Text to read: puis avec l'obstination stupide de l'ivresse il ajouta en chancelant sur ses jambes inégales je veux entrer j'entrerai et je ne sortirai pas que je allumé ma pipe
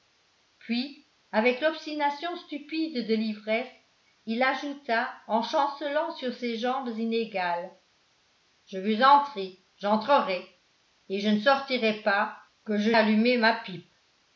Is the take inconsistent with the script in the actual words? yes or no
no